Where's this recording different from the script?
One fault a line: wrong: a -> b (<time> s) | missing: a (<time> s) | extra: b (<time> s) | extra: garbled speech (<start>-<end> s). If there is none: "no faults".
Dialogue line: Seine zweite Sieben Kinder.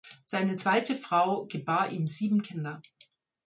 extra: Frau gebar ihm (0.9 s)